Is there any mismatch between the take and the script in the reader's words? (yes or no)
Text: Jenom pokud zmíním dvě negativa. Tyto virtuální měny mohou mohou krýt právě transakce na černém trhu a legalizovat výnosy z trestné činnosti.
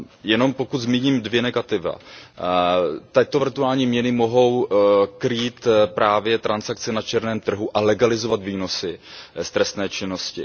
yes